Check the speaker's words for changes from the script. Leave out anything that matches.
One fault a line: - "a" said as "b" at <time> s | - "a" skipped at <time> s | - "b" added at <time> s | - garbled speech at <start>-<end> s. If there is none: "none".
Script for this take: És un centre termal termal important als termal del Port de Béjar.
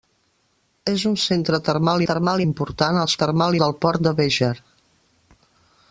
none